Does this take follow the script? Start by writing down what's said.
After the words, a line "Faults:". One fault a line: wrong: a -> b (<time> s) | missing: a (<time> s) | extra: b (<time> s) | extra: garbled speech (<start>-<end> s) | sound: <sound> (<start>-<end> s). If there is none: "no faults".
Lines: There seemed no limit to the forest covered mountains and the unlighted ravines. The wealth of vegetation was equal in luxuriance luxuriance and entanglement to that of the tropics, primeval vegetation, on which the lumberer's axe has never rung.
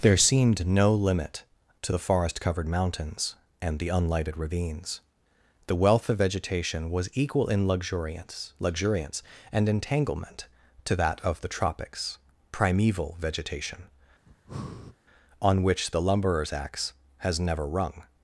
There seemed no limit to the forest covered mountains and the unlighted ravines. The wealth of vegetation was equal in luxuriance luxuriance and entanglement to that of the tropics, primeval vegetation, on which the lumberer's axe has never rung.
Faults:
sound: breath (14.3-15.0 s)